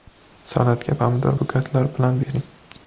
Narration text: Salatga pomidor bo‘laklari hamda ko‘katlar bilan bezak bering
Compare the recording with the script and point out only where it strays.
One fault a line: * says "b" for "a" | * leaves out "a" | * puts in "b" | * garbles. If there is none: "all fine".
* leaves out "bo‘laklari hamda"
* leaves out "bezak"